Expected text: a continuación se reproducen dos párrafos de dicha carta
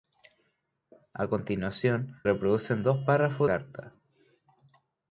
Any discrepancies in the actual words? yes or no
yes